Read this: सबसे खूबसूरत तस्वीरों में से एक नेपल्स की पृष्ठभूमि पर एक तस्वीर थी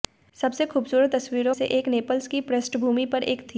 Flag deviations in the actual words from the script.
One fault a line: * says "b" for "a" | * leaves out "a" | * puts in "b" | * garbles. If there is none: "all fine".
* leaves out "में"
* leaves out "तस्वीर"